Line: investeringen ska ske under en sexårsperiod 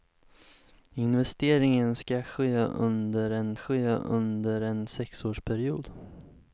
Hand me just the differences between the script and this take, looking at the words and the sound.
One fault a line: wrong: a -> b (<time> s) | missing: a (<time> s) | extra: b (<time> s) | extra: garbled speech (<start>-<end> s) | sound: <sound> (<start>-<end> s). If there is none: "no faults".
extra: ske under en (3.5 s)